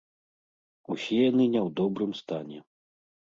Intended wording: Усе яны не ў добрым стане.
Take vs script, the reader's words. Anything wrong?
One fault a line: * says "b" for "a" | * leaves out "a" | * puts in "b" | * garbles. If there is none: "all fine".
all fine